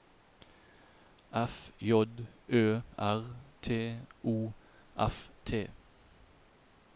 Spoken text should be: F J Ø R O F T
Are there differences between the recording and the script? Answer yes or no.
yes